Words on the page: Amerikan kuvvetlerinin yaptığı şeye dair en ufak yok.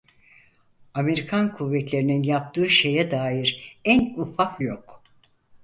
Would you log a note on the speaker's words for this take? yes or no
no